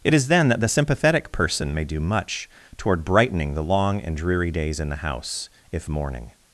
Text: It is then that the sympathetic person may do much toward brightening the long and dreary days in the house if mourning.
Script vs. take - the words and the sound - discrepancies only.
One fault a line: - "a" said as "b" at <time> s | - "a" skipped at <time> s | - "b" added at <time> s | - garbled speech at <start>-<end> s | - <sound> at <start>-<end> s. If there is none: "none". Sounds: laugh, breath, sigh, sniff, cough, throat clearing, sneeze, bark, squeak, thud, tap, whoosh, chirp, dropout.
none